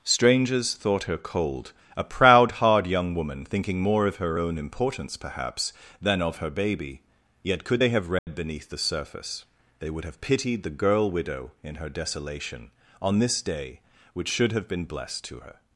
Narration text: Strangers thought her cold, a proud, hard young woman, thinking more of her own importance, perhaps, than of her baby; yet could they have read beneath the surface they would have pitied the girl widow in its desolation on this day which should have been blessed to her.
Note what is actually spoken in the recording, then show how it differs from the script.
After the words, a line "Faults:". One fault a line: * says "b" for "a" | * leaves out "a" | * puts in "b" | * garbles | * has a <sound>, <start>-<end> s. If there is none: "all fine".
Strangers thought her cold, a proud, hard young woman, thinking more of her own importance, perhaps, than of her baby; yet could they have read beneath the surface they would have pitied the girl widow in her desolation on this day which should have been blessed to her.
Faults:
* has a dropout, 8.2-8.3 s
* says "her" for "its"